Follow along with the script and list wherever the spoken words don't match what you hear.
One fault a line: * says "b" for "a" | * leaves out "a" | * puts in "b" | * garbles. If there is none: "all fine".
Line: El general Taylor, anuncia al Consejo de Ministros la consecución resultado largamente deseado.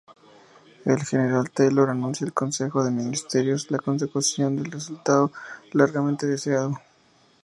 * puts in "del"